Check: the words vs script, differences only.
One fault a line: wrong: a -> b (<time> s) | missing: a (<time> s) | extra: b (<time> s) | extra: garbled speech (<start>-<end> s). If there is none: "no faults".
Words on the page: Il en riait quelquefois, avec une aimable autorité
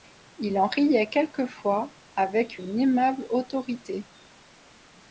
no faults